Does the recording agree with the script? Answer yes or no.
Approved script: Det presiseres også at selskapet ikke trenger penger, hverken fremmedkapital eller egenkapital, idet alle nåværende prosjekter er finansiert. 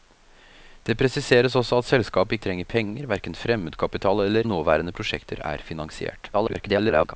no